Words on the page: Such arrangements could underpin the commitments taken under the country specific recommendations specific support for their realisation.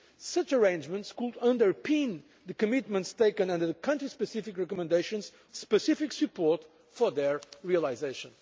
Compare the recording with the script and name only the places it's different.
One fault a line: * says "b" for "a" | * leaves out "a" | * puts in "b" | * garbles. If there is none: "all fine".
all fine